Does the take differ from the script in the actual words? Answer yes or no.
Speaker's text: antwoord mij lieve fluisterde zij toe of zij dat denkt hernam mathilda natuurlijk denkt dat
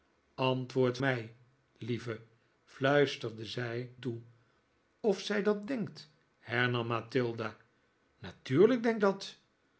no